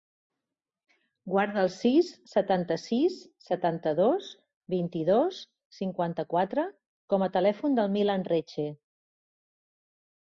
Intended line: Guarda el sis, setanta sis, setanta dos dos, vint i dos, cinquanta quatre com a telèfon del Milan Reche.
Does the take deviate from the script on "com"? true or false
false